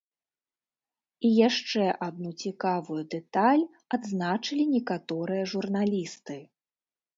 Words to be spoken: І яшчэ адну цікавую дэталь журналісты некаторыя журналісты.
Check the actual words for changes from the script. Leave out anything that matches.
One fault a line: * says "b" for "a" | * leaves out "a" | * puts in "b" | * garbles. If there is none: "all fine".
* says "адзначылі" for "журналісты"